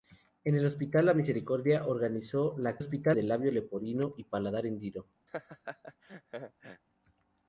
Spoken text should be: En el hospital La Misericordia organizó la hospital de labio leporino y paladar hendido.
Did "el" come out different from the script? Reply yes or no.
no